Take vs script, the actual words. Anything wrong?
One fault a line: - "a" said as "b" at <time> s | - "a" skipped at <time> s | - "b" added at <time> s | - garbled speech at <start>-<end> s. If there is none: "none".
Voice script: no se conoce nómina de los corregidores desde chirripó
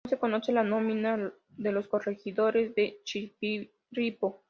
- "la" added at 0.5 s
- "desde" said as "de" at 2.7 s